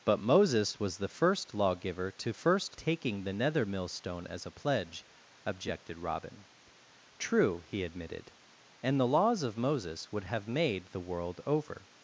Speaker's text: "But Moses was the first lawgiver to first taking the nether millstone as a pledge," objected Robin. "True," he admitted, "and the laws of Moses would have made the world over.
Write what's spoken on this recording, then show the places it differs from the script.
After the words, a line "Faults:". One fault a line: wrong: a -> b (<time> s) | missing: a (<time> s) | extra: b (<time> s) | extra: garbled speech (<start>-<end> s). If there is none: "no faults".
"But Moses was the first lawgiver to first taking the nether millstone as a pledge," objected Robin. "True," he admitted, "and the laws of Moses would have made the world over.
Faults:
no faults